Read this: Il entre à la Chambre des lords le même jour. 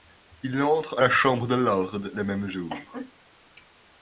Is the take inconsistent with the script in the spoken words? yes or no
no